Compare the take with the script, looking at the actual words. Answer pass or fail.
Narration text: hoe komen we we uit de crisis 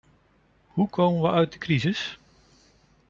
fail